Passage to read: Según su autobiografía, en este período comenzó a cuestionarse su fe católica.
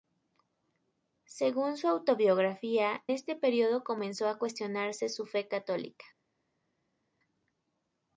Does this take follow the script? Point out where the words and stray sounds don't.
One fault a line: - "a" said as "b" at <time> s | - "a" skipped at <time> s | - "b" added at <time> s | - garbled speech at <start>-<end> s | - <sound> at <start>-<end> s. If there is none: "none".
- "en" skipped at 3.0 s